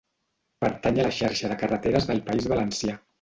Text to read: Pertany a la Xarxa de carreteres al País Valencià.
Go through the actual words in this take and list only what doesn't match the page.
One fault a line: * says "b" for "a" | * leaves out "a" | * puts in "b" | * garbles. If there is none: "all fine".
* says "del" for "al"